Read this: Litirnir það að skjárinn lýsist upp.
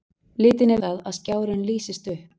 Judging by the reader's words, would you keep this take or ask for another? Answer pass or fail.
pass